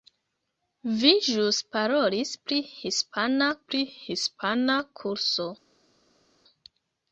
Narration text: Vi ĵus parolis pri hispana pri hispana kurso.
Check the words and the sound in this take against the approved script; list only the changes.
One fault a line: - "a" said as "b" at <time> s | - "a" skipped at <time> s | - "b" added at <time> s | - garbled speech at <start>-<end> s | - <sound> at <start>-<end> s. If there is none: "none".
none